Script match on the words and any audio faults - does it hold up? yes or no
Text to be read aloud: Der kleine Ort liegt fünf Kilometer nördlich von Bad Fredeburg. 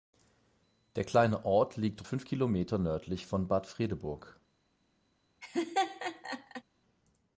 no